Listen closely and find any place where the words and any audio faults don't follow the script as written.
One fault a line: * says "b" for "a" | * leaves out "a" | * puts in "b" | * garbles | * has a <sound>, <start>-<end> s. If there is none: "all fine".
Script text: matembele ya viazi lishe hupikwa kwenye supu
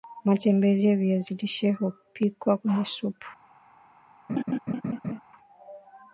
* has a laugh, 4.3-5.2 s